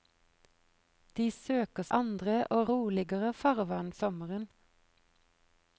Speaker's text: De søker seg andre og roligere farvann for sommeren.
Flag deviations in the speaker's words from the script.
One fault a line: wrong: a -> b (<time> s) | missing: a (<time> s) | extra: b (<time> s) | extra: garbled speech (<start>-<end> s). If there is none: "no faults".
missing: seg (1.9 s)
missing: for (3.9 s)